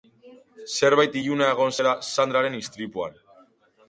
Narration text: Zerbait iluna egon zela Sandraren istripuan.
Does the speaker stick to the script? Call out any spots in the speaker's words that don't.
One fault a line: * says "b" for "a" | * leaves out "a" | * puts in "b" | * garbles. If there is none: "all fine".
all fine